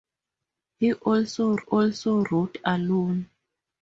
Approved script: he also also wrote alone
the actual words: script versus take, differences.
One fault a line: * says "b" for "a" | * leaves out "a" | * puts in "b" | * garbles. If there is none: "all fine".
all fine